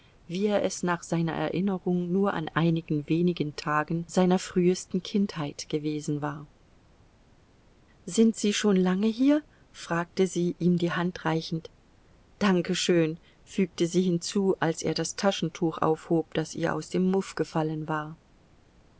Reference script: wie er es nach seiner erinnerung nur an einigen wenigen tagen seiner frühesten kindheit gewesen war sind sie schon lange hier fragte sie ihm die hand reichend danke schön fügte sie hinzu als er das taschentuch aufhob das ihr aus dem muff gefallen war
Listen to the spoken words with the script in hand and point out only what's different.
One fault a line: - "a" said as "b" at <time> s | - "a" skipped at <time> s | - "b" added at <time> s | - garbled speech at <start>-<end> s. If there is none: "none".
none